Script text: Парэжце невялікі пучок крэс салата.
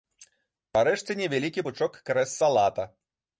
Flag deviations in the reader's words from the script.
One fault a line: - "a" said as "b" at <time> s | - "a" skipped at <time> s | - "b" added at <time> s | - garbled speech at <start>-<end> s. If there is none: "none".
none